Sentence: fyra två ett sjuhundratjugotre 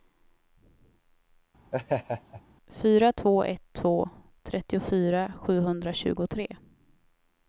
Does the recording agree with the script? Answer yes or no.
no